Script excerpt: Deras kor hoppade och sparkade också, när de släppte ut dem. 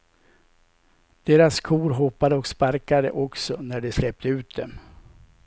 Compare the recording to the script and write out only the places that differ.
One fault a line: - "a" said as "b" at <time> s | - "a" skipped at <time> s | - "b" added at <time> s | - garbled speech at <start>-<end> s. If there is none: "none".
none